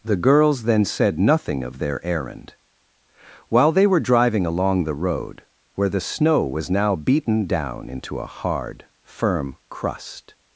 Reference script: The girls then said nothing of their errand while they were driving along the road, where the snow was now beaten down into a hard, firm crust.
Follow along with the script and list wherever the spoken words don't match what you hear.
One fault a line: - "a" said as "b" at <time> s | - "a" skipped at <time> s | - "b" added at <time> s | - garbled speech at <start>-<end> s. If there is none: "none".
none